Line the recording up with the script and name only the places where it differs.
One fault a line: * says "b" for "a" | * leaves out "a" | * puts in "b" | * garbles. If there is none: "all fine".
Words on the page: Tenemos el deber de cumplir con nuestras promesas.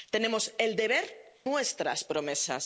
* leaves out "de cumplir con"